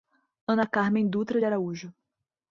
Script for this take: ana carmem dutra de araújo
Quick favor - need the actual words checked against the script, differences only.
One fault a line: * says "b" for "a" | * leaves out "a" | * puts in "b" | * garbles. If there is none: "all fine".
all fine